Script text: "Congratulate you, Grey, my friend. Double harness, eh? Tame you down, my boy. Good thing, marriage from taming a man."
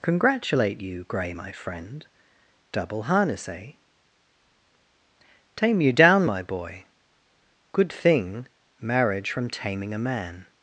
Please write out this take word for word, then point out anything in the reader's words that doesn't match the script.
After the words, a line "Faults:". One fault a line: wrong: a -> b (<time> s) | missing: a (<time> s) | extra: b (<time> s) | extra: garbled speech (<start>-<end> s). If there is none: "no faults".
"Congratulate you, Grey, my friend. Double harness, eh? Tame you down, my boy. Good thing, marriage from taming a man."
Faults:
no faults